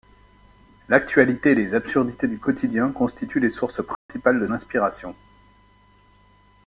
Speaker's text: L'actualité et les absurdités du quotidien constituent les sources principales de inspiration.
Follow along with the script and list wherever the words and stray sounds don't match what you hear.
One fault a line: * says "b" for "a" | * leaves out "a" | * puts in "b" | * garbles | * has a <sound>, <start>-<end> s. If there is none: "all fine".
* has a dropout, 3.9-4.1 s